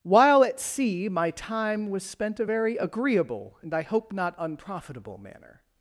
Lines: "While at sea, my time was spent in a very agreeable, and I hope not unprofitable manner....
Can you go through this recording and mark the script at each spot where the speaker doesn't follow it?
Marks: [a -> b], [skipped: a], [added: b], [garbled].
"While at sea, my time was spent [skipped: in] a very agreeable, and I hope not unprofitable manner....